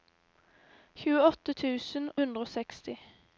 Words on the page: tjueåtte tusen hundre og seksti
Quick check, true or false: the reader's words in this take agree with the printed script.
true